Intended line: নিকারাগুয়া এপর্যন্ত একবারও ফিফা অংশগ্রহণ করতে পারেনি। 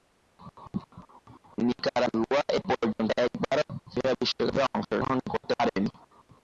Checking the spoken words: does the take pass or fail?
fail